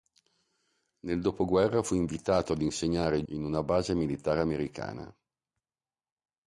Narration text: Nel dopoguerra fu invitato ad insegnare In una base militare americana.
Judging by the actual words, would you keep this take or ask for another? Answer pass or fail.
pass